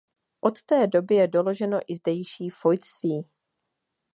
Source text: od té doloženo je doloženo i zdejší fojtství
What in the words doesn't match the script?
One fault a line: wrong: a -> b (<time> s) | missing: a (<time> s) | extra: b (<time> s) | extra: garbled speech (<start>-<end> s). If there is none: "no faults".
wrong: doloženo -> doby (0.9 s)